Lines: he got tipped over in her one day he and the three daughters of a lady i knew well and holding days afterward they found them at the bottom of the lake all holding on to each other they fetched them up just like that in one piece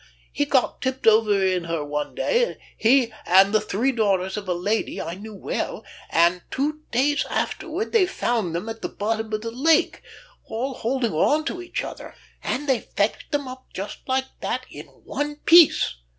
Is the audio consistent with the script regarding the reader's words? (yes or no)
no